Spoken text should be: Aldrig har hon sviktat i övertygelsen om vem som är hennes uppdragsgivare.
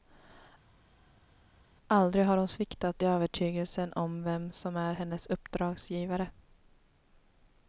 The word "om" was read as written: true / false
true